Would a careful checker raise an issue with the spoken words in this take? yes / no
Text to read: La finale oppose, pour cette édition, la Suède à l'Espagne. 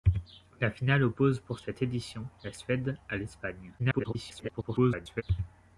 yes